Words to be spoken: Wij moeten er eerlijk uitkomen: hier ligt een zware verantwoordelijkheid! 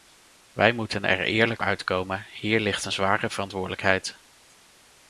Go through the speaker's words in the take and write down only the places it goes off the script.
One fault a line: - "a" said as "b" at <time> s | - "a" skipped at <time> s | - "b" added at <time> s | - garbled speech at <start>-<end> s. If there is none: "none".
none